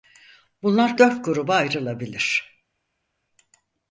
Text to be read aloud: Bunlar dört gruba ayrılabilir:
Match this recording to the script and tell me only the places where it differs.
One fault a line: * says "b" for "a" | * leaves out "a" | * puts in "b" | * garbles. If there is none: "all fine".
all fine